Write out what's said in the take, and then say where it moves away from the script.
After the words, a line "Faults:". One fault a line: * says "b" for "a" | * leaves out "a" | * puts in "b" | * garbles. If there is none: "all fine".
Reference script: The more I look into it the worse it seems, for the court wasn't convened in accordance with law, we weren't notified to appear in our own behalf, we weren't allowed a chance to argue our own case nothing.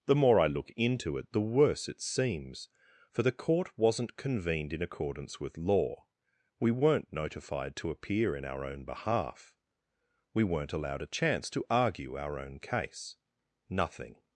The more I look into it the worse it seems, for the court wasn't convened in accordance with law, we weren't notified to appear in our own behalf, we weren't allowed a chance to argue our own case nothing.
Faults:
all fine